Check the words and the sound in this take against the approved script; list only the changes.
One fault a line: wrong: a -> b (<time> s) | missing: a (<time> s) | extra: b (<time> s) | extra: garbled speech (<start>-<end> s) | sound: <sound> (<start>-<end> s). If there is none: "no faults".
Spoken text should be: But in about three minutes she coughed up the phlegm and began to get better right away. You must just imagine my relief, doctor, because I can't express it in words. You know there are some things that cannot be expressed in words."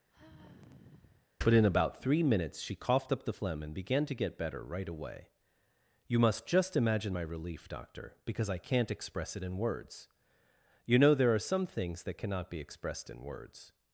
sound: sigh (0.1-1.3 s)